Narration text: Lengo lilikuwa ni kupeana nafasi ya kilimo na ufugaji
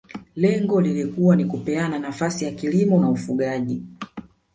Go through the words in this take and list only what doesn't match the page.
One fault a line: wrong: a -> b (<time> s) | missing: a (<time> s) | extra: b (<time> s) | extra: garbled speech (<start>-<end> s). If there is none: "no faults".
no faults